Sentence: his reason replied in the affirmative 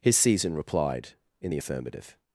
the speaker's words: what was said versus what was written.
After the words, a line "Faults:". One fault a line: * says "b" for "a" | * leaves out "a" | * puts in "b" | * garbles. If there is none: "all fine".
his season replied in the affirmative
Faults:
* says "season" for "reason"